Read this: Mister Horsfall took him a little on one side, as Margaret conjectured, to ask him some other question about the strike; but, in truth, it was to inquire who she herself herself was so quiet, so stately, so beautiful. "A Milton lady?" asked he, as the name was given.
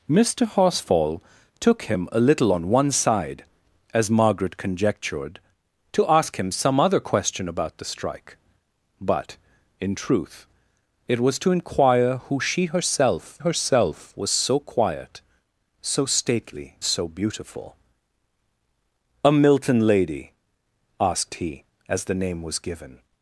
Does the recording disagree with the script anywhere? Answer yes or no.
no